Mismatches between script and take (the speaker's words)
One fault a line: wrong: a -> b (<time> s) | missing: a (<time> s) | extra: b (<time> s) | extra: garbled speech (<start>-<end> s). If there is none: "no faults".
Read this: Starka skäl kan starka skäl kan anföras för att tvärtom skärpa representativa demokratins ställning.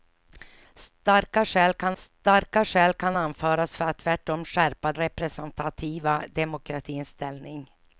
no faults